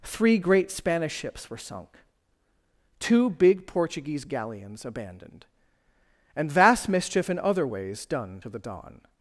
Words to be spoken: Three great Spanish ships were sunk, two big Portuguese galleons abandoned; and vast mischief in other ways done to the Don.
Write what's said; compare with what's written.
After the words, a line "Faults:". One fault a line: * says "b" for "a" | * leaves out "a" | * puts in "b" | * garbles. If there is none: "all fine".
Three great Spanish ships were sunk, two big Portuguese galleons abandoned; and vast mischief in other ways done to the Don.
Faults:
all fine